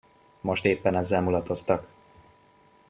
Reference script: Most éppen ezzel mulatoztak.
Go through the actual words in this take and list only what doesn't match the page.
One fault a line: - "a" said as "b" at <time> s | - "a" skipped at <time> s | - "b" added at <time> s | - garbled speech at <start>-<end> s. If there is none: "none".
none